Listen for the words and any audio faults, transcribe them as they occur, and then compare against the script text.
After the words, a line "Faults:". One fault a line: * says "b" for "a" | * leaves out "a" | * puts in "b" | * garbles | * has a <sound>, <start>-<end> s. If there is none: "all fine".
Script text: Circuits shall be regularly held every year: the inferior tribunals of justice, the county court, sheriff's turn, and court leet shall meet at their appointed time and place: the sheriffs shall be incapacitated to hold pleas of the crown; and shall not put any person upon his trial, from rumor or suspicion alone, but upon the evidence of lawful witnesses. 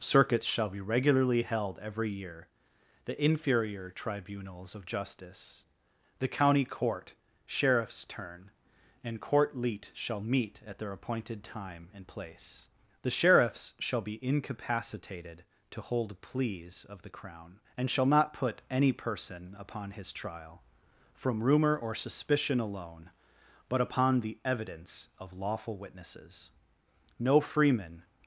Circuits shall be regularly held every year: the inferior tribunals of justice, the county court, sheriff's turn, and court leet shall meet at their appointed time and place: the sheriffs shall be incapacitated to hold pleas of the crown; and shall not put any person upon his trial, from rumor or suspicion alone, but upon the evidence of lawful witnesses. No freeman
Faults:
* puts in "No freeman"